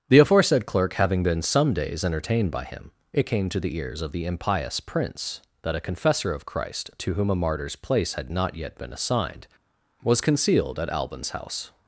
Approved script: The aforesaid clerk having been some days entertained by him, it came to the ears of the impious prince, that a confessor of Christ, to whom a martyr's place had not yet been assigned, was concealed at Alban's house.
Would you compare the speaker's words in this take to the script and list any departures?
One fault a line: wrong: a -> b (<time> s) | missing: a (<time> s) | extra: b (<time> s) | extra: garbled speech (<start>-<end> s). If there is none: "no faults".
no faults